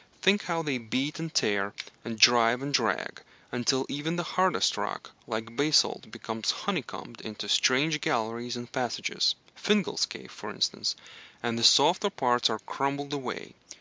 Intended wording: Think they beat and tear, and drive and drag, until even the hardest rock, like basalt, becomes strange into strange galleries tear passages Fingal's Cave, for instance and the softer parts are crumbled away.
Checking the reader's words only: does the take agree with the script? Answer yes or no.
no